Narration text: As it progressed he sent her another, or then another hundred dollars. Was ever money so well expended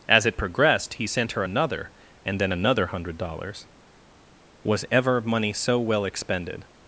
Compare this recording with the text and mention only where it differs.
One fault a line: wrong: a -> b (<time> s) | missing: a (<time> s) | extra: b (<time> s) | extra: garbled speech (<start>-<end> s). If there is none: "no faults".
wrong: or -> and (2.2 s)